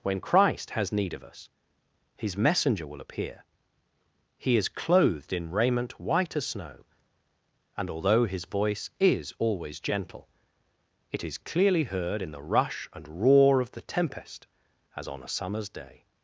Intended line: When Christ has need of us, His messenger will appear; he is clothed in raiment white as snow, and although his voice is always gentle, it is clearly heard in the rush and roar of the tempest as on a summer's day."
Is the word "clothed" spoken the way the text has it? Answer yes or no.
yes